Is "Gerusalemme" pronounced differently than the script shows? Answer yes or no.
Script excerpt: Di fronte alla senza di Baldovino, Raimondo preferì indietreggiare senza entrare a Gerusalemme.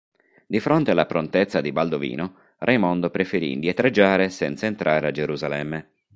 no